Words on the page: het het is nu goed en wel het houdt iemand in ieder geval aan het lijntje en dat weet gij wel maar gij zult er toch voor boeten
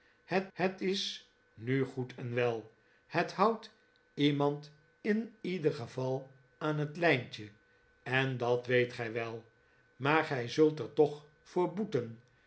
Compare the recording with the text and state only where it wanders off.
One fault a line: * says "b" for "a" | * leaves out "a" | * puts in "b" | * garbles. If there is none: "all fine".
all fine